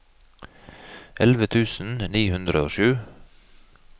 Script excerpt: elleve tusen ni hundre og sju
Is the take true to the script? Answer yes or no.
yes